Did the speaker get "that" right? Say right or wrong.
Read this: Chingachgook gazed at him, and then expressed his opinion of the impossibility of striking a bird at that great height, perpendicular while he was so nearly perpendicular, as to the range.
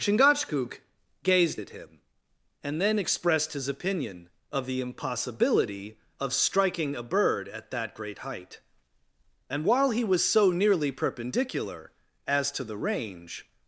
right